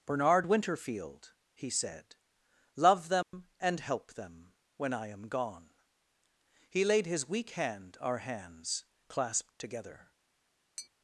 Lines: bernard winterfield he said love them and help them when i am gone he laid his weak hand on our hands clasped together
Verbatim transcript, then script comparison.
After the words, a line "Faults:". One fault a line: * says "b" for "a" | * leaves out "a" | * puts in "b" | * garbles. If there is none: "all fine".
bernard winterfield he said love them and help them when i am gone he laid his weak hand our hands clasped together
Faults:
* leaves out "on"